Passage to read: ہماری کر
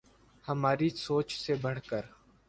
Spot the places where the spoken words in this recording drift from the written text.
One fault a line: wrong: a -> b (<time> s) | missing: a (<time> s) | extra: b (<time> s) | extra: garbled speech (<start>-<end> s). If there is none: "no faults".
extra: سوچ سے بڑھ (1.0 s)